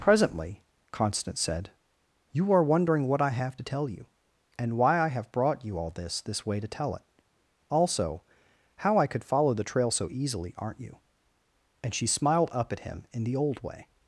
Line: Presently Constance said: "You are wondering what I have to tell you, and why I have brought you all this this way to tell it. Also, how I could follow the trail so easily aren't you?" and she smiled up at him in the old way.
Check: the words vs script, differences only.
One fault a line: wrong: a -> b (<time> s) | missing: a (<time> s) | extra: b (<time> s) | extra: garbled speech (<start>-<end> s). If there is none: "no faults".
no faults